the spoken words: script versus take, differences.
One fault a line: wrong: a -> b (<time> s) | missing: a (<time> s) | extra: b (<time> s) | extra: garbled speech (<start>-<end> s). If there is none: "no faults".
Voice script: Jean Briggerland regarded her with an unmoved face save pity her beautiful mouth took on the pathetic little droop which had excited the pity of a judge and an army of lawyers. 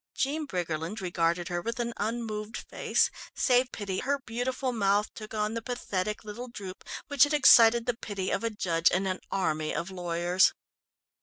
no faults